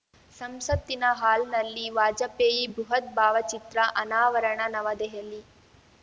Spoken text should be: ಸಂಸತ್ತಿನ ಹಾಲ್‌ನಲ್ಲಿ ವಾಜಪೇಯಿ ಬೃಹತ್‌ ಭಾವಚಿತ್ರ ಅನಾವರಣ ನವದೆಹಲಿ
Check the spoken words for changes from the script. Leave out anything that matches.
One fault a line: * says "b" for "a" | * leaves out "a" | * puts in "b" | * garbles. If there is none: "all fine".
all fine